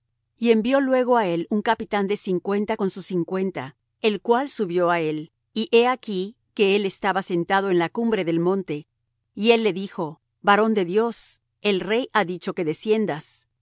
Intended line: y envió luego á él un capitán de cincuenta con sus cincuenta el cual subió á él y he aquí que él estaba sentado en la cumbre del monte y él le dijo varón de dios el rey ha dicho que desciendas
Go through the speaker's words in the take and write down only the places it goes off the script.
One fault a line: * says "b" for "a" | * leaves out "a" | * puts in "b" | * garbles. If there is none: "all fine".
all fine